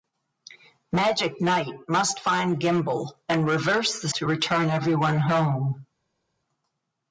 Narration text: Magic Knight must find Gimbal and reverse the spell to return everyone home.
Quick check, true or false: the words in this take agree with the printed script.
false